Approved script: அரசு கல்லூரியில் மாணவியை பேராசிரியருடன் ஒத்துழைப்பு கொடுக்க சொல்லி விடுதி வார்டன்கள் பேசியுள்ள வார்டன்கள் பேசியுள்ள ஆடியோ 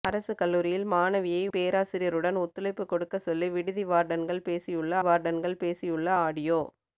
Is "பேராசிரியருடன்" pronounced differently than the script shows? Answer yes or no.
no